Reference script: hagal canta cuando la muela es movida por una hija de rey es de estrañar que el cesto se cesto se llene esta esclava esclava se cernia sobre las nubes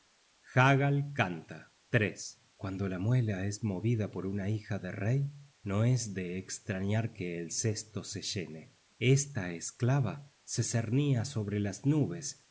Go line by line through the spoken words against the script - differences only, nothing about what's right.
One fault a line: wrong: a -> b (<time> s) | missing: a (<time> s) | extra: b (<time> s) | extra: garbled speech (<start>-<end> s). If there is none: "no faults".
extra: no (5.6 s)
missing: cesto se (8.2 s)
missing: esclava (10.3 s)